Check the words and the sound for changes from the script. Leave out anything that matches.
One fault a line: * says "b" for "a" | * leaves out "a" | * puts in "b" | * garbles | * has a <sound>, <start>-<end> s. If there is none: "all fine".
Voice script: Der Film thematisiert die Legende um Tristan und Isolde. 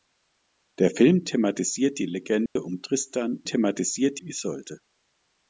* has a dropout, 2.5-2.6 s
* says "thematisiert" for "und"